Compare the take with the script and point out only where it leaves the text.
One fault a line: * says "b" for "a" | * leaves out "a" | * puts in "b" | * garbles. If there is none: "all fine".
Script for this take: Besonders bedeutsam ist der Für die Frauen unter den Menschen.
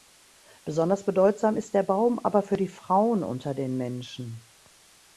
* puts in "Baum aber"